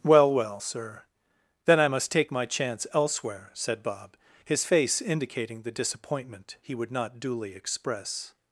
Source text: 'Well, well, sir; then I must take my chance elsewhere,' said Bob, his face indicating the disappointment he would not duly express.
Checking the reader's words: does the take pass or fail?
pass